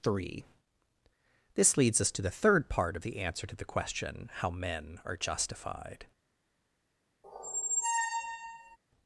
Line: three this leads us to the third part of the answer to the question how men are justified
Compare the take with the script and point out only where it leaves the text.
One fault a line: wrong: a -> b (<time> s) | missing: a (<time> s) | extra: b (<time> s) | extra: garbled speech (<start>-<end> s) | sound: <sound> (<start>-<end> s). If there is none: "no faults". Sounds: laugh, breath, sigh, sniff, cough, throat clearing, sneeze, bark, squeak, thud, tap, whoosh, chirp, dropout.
sound: squeak (7.2-8.8 s)